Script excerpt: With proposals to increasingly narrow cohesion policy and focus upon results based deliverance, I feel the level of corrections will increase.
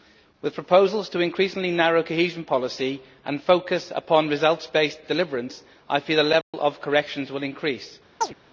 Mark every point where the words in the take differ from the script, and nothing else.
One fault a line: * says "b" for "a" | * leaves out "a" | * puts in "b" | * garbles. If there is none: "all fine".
all fine